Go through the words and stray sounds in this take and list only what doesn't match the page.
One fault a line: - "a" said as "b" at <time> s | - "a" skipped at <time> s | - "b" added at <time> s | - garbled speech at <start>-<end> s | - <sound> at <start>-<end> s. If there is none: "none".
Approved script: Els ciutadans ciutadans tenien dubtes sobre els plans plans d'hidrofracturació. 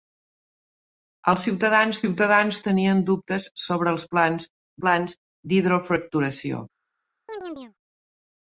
- chirp at 7.3-7.7 s